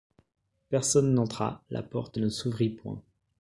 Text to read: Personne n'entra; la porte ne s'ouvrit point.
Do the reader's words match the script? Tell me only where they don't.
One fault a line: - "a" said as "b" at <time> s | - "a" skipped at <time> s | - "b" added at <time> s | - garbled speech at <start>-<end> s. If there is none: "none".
none